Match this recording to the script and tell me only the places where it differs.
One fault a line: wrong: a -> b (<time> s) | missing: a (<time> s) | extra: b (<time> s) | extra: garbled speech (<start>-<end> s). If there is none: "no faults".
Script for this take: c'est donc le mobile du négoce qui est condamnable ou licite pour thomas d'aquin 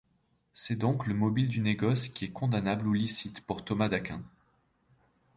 no faults